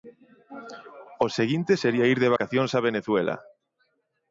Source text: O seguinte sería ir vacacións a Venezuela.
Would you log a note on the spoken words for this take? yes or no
yes